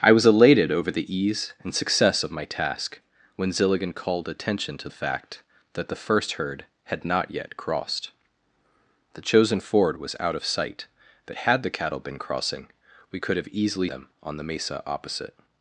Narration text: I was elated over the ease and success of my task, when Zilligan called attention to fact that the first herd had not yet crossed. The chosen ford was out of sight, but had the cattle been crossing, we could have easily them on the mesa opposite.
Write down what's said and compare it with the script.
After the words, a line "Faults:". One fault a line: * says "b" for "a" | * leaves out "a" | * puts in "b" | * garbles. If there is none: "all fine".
I was elated over the ease and success of my task, when Zilligan called attention to fact that the first herd had not yet crossed. The chosen ford was out of sight, but had the cattle been crossing, we could have easily them on the mesa opposite.
Faults:
all fine